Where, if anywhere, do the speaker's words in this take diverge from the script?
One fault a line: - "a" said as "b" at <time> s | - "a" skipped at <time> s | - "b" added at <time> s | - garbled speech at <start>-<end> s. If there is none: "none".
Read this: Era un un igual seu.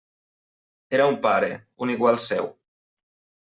- "pare" added at 1.3 s